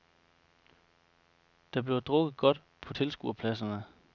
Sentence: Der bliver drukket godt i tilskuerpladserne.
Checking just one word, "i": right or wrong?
wrong